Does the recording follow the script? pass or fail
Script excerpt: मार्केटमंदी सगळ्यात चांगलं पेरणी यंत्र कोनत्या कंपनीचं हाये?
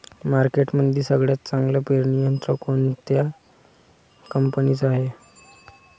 pass